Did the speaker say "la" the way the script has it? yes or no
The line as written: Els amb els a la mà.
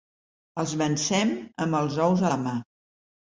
yes